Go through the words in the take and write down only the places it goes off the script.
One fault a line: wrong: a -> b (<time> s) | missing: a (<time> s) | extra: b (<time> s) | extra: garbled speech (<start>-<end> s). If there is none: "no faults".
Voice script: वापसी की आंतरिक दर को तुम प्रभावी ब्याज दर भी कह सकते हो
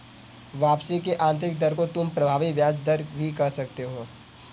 no faults